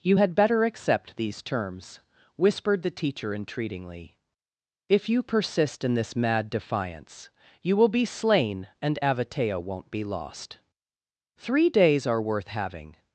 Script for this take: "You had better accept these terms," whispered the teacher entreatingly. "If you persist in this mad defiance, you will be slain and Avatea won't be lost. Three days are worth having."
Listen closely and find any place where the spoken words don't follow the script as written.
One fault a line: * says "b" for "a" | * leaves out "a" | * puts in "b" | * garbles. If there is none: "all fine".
all fine